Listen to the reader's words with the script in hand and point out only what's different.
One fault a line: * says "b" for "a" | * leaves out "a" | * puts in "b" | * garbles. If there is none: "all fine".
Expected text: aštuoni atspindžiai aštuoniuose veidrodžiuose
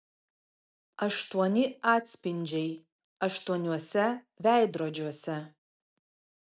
all fine